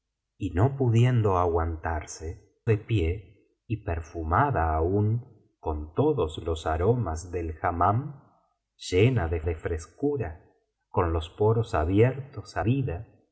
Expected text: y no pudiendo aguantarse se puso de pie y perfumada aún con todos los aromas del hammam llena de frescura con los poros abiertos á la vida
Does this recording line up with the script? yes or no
no